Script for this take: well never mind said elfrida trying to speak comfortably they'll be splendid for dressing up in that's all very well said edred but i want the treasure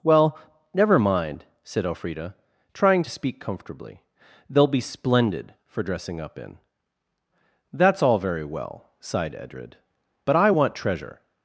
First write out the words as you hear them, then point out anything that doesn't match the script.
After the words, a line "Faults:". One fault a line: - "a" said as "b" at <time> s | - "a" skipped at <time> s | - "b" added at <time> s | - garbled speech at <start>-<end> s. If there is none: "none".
well never mind said elfrida trying to speak comfortably they'll be splendid for dressing up in that's all very well sighed edred but i want treasure
Faults:
- "said" said as "sighed" at 9.0 s
- "the" skipped at 10.8 s